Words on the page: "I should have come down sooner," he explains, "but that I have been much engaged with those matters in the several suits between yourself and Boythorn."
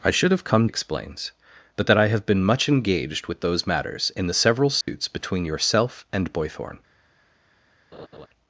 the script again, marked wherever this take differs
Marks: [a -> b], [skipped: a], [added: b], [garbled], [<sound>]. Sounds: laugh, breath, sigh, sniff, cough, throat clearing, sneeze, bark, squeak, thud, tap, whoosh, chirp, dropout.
"I should have come [skipped: down sooner," he] explains, "but that I have been much engaged with those matters in the several suits [dropout] between yourself and Boythorn." [laugh]